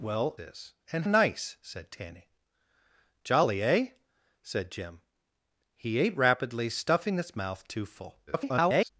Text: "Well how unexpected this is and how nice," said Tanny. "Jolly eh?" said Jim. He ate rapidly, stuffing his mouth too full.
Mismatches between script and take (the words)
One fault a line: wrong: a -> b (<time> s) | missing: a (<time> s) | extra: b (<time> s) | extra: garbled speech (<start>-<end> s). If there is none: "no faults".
missing: how unexpected this (0.3 s)
missing: how (1.0 s)
extra: garbled speech (8.3-8.9 s)